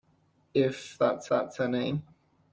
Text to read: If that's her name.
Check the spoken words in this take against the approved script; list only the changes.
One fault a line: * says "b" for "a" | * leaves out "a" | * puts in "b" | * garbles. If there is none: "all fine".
* puts in "that's"